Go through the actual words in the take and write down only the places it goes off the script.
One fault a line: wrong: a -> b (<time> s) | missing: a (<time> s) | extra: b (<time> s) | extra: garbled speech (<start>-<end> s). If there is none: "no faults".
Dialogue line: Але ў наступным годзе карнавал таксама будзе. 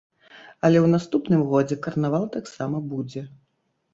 no faults